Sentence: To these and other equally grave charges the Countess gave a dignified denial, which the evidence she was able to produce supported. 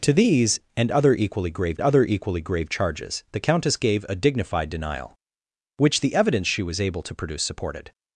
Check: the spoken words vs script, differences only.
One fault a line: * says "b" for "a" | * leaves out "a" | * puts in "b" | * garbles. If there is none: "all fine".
* puts in "other equally grave"